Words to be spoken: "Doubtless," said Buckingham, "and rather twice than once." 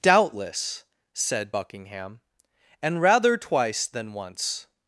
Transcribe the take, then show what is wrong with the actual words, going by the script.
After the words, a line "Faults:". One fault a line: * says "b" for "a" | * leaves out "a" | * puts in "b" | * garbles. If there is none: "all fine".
"Doubtless," said Buckingham, "and rather twice than once."
Faults:
all fine